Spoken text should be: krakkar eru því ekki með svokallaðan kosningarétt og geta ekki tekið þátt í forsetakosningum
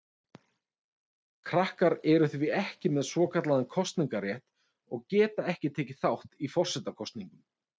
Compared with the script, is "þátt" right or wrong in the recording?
right